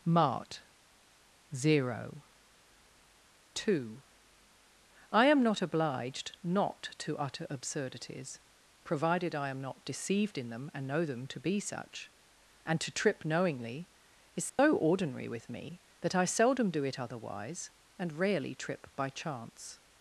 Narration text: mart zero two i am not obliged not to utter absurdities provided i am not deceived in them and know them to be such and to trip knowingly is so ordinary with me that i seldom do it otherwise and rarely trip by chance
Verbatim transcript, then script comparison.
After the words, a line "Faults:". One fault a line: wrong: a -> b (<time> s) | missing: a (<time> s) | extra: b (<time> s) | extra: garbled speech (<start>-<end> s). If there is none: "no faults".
mart zero two i am not obliged not to utter absurdities provided i am not deceived in them and know them to be such and to trip knowingly is so ordinary with me that i seldom do it otherwise and rarely trip by chance
Faults:
no faults